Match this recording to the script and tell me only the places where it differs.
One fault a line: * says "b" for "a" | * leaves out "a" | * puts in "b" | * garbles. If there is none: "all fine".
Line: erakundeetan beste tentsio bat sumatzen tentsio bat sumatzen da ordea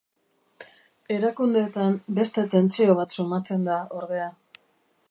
* leaves out "tentsio bat sumatzen"